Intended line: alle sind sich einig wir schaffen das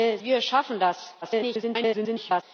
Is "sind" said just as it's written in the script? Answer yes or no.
no